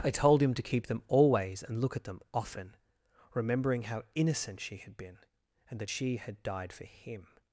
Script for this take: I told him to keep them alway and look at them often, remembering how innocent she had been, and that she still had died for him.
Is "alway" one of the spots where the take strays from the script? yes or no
yes